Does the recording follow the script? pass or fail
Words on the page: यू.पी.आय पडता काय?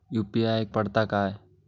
pass